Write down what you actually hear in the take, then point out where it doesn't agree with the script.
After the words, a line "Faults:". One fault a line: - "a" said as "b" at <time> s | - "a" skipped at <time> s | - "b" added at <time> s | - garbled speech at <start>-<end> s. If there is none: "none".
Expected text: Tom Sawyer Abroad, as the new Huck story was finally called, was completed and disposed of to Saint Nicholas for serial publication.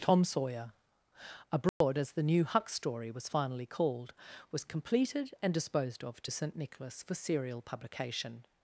Tom Sawyer Abroad, as the new Huck story was finally called, was completed and disposed of to Saint Nicholas for serial publication.
Faults:
none